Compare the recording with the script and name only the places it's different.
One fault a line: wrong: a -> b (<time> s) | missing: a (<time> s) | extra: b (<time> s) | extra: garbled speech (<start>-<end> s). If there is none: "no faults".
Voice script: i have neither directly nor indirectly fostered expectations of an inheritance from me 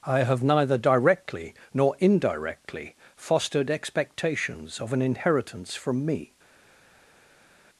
no faults